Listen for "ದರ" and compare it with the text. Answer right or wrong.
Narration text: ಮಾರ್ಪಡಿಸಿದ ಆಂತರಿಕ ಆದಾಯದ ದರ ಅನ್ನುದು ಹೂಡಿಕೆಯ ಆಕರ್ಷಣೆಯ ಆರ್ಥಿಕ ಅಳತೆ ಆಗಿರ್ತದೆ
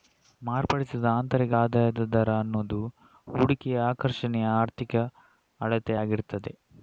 right